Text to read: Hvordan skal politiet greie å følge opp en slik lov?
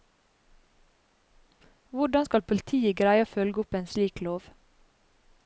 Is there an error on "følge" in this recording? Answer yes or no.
no